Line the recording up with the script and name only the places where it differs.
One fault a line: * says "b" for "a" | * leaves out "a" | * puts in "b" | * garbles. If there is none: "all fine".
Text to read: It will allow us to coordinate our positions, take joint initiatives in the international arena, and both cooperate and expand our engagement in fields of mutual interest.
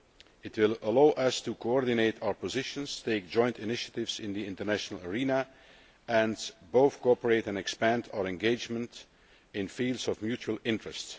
all fine